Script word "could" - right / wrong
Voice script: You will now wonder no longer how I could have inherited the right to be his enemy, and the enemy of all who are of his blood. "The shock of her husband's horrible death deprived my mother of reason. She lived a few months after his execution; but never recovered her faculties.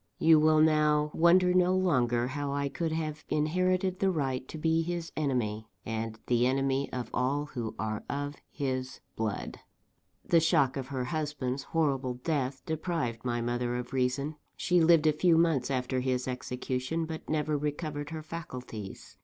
right